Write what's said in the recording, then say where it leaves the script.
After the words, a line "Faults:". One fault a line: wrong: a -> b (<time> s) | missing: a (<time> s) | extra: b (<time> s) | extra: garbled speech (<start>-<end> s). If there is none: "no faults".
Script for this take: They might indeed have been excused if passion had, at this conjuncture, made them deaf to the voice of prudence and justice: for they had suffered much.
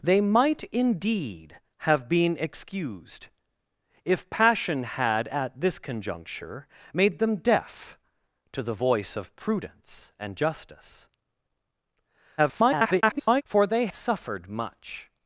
They might indeed have been excused if passion had, at this conjuncture, made them deaf to the voice of prudence and justice: [garbled] for they suffered much.
Faults:
extra: garbled speech (12.4-13.4 s)
missing: had (13.9 s)